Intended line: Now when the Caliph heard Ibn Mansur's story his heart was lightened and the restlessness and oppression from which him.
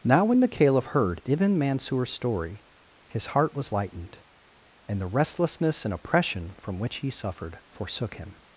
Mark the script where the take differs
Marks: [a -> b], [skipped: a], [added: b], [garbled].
Now when the Caliph heard Ibn Mansur's story his heart was lightened and the restlessness and oppression from which [added: he suffered forsook] him.